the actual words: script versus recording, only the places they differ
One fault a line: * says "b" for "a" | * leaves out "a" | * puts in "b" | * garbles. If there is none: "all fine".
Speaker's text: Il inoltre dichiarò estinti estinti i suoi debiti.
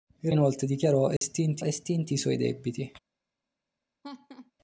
all fine